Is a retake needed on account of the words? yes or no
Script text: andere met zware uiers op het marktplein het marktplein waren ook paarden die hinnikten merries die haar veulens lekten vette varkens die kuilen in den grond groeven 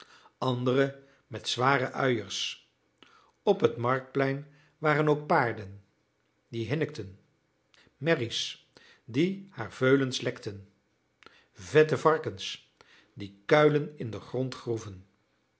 yes